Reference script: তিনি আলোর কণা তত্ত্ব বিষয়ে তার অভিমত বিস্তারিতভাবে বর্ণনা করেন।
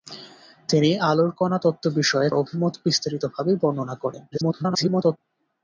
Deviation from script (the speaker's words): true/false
true